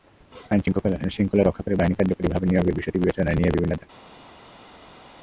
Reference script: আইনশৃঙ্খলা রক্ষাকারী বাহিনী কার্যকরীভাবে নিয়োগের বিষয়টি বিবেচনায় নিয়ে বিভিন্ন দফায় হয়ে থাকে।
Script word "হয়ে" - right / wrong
wrong